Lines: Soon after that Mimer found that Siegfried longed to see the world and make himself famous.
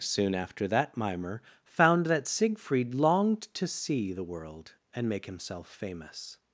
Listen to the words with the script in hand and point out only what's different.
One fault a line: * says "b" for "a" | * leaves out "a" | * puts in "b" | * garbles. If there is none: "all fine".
all fine